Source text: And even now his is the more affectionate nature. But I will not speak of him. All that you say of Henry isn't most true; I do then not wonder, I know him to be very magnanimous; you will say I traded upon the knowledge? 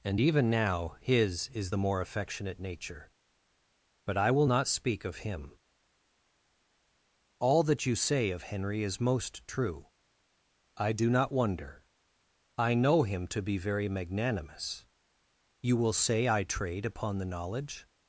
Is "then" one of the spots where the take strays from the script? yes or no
yes